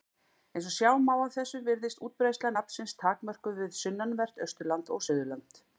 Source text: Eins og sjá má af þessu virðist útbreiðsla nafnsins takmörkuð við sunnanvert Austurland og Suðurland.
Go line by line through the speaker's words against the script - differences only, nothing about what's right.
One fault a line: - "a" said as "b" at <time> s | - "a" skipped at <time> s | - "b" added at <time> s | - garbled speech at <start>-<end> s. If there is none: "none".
none